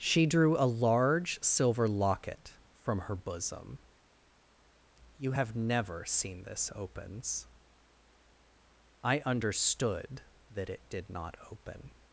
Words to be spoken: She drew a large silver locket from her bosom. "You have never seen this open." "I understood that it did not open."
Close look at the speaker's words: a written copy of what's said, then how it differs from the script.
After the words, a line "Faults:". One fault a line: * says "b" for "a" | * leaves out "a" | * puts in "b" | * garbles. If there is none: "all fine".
She drew a large silver locket from her bosom. "You have never seen this opens." "I understood that it did not open."
Faults:
* says "opens" for "open"